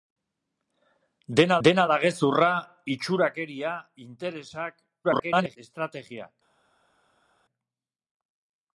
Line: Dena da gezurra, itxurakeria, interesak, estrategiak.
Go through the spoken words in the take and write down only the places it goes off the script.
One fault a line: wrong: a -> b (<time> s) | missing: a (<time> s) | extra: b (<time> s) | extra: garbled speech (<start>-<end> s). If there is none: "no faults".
extra: dena (1.7 s)
extra: garbled speech (5.0-5.6 s)